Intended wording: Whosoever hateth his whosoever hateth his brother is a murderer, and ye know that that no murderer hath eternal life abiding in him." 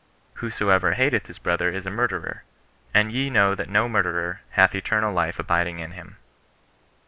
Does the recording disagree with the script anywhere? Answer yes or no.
yes